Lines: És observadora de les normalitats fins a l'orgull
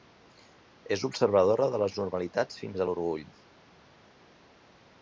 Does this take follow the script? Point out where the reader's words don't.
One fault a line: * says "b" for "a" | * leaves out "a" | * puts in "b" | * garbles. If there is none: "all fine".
all fine